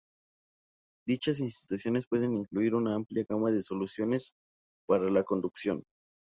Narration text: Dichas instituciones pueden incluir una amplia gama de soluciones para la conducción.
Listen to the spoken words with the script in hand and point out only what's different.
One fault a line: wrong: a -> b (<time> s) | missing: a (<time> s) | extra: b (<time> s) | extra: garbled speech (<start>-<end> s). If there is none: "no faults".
no faults